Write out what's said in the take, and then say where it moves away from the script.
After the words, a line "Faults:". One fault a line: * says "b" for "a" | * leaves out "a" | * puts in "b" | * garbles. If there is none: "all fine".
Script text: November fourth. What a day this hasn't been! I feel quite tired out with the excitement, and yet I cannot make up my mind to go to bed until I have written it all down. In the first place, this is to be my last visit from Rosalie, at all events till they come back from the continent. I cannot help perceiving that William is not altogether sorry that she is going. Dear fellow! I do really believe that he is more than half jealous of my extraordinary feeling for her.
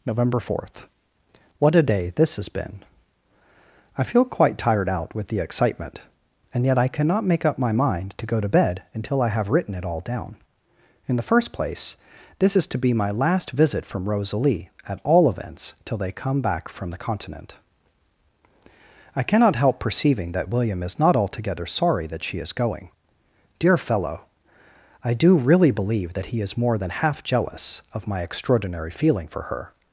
November fourth. What a day this has been! I feel quite tired out with the excitement, and yet I cannot make up my mind to go to bed until I have written it all down. In the first place, this is to be my last visit from Rosalie, at all events till they come back from the continent. I cannot help perceiving that William is not altogether sorry that she is going. Dear fellow! I do really believe that he is more than half jealous of my extraordinary feeling for her.
Faults:
* says "has" for "hasn't"